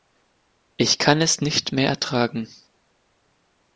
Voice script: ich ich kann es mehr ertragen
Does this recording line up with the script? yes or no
no